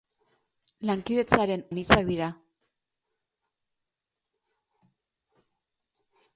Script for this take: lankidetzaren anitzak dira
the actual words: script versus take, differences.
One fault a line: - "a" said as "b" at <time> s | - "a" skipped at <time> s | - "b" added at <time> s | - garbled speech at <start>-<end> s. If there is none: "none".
none